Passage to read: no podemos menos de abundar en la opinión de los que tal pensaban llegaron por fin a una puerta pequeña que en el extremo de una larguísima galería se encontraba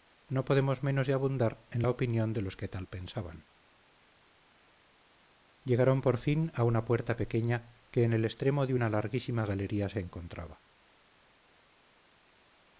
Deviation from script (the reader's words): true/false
false